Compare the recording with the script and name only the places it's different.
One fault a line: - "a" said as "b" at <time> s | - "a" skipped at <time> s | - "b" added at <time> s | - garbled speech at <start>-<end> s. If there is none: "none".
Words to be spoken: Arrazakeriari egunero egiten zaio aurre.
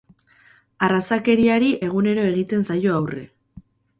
none